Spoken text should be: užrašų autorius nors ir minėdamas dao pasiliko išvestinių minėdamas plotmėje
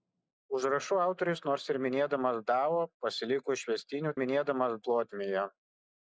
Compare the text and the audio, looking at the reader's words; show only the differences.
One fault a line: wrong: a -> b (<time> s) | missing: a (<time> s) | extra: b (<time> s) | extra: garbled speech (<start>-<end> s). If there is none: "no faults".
no faults